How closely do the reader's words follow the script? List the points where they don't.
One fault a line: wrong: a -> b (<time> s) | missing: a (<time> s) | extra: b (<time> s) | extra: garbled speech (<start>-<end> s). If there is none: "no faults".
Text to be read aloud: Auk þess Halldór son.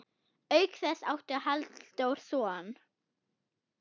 extra: átti (1.1 s)